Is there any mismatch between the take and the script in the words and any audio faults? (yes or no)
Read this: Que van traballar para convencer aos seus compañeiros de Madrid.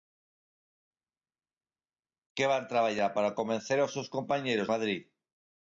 yes